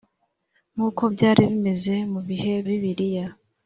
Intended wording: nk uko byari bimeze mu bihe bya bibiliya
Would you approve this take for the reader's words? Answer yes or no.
no